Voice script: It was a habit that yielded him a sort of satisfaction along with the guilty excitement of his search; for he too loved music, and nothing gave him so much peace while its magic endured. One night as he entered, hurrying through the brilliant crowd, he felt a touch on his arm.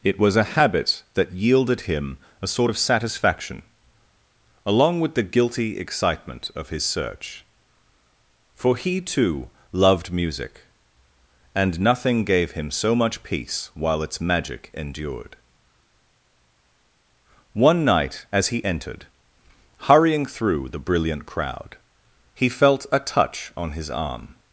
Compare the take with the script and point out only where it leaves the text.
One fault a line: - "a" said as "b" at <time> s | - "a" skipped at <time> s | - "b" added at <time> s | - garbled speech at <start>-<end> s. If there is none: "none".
none